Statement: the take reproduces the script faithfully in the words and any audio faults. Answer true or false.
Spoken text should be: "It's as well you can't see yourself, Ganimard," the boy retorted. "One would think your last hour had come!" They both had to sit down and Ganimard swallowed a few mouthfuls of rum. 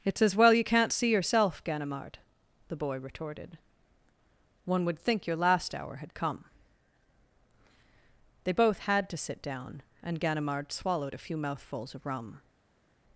true